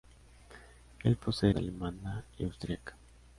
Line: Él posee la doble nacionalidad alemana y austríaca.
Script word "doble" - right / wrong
wrong